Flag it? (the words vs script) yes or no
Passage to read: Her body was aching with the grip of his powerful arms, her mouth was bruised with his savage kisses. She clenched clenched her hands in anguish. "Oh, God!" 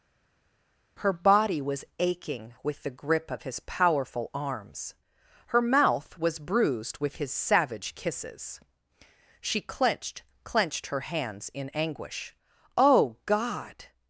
no